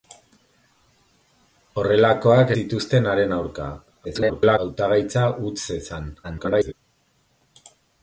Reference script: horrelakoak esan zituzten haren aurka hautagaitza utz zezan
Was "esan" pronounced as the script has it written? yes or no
no